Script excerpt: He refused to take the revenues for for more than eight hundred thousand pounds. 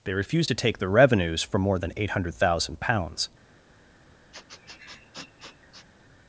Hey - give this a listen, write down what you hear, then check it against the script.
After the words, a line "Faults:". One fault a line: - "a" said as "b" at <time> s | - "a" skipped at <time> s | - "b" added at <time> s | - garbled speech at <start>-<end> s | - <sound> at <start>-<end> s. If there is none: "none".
They refused to take the revenues for more than eight hundred thousand pounds.
Faults:
- "He" said as "They" at 0.0 s
- "for" skipped at 1.6 s
- sniff at 4.3-5.9 s